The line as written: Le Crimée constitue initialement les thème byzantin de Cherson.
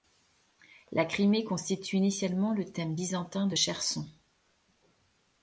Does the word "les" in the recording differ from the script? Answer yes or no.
yes